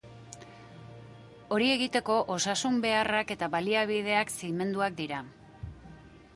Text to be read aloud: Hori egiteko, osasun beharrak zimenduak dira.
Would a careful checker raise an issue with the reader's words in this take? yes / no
yes